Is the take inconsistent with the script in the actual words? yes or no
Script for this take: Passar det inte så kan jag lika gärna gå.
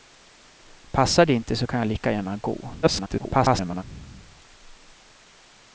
yes